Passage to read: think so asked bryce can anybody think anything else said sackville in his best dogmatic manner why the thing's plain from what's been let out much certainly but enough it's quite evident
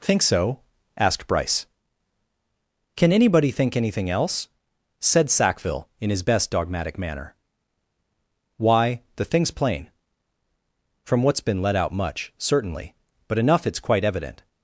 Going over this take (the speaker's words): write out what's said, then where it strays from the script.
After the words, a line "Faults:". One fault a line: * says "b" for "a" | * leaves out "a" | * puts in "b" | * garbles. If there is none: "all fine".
think so asked bryce can anybody think anything else said sackville in his best dogmatic manner why the thing's plain from what's been let out much certainly but enough it's quite evident
Faults:
all fine